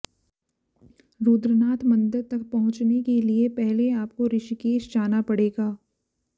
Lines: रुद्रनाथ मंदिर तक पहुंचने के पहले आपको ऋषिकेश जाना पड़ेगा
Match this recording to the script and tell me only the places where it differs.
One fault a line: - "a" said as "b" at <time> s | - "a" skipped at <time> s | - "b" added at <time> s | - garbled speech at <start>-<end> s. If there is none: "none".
- "लिए" added at 3.2 s